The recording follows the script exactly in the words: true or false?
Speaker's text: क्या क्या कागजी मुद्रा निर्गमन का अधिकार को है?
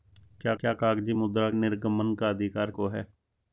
true